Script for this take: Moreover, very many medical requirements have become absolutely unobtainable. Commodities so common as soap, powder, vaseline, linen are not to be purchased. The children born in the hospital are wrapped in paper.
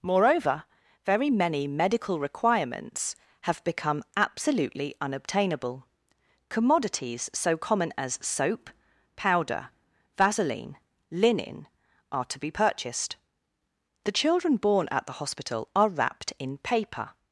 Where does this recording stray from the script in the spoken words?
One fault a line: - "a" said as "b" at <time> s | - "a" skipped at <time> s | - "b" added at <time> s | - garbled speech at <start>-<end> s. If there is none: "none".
- "not" skipped at 12.2 s
- "in" said as "at" at 14.9 s